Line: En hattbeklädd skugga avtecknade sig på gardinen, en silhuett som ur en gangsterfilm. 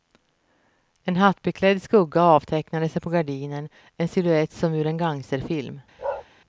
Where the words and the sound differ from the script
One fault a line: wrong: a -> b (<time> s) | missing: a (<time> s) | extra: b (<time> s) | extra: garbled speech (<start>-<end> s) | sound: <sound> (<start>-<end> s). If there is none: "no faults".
sound: bark (6.0-6.3 s)